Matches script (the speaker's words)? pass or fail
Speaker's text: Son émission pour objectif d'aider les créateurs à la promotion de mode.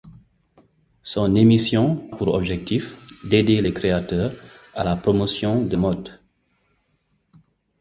pass